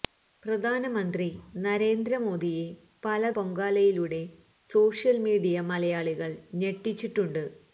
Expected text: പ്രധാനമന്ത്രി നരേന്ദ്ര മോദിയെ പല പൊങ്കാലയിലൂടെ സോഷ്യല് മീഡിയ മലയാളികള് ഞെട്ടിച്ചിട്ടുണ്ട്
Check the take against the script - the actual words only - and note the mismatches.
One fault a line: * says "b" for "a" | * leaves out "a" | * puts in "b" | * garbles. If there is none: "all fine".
all fine